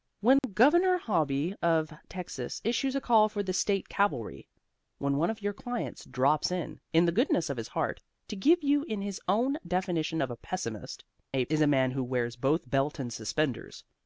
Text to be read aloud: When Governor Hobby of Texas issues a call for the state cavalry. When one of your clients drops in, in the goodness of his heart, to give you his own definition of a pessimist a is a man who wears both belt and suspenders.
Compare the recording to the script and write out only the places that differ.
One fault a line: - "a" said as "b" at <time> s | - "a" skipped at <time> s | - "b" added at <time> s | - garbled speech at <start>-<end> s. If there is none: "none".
none